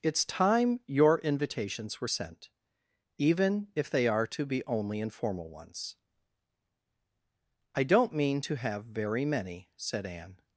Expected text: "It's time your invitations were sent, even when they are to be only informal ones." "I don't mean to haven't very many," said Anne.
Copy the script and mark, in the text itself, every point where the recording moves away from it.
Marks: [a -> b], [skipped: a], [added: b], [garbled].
"It's time your invitations were sent, even [when -> if] they are to be only informal ones." "I don't mean to [haven't -> have] very many," said Anne.